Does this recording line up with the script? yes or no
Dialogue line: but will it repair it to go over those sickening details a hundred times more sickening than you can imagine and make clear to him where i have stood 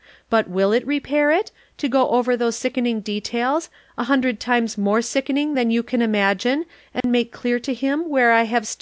yes